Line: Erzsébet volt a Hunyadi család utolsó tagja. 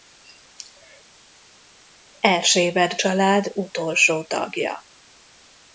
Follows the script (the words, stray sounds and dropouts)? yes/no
no